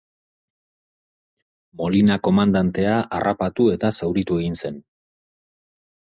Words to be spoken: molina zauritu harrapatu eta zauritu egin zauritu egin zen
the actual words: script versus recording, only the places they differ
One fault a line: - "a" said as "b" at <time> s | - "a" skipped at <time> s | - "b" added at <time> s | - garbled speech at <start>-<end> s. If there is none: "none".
- "zauritu" said as "komandantea" at 2.3 s
- "zauritu egin" skipped at 4.6 s